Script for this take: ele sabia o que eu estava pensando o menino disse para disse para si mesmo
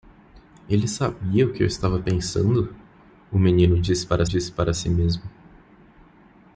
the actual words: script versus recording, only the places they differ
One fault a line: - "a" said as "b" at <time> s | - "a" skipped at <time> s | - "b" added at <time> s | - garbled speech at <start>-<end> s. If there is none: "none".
none